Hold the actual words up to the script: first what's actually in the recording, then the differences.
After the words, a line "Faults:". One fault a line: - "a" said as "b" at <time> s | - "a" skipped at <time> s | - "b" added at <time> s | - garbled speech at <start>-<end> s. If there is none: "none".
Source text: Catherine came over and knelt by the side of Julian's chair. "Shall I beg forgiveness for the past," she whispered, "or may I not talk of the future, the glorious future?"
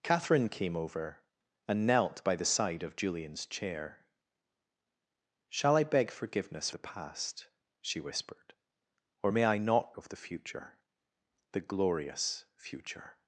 Catherine came over and knelt by the side of Julian's chair. "Shall I beg forgiveness the past," she whispered, "or may I not of the future, the glorious future?"
Faults:
- "for" skipped at 6.7 s
- "talk" skipped at 10.0 s